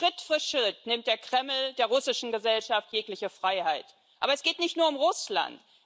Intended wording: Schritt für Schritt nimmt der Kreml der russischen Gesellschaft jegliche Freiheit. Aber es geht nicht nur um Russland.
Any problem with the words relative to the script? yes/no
no